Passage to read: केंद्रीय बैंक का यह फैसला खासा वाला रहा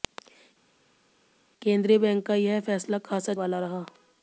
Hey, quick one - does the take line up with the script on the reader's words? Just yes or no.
yes